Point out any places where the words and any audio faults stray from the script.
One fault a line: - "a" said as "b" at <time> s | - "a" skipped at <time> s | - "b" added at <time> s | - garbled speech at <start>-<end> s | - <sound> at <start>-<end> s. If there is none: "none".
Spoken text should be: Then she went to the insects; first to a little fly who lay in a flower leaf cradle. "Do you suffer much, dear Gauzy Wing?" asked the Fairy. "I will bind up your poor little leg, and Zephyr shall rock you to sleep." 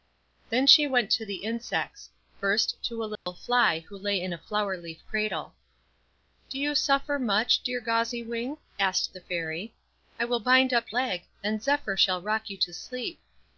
- dropout at 3.2-3.3 s
- "your poor little" skipped at 10.9 s